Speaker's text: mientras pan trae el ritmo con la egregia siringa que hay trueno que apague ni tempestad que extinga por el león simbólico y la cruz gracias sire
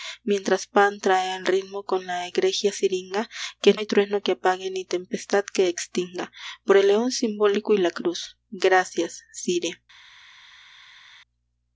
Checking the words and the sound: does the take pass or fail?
pass